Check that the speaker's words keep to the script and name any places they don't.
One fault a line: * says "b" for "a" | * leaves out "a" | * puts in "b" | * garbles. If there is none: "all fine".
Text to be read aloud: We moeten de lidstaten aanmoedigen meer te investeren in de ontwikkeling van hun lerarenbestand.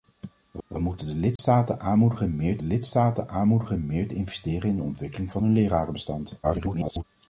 * puts in "we"
* puts in "lidstaten aanmoedigen meer"
* garbles